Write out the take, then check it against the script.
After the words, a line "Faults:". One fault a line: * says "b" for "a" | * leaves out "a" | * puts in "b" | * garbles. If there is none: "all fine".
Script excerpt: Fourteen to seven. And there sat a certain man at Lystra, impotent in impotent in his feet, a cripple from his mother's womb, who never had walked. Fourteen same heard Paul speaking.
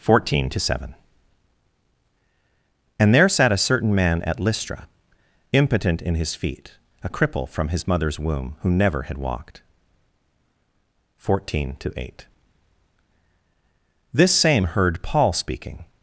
Fourteen to seven. And there sat a certain man at Lystra, impotent in his feet, a cripple from his mother's womb, who never had walked. Fourteen to eight. This same heard Paul speaking.
Faults:
* leaves out "impotent in"
* puts in "to eight This"